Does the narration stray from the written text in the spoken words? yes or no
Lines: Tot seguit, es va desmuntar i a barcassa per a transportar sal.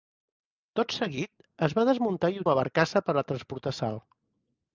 no